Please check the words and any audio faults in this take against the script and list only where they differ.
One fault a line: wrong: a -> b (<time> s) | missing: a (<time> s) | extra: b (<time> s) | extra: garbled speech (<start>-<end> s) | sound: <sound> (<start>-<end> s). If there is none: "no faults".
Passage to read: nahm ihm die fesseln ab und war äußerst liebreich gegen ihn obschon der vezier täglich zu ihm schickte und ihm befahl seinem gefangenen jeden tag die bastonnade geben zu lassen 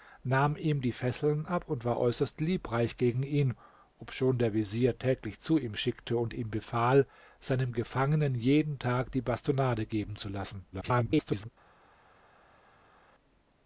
extra: garbled speech (10.7-11.5 s)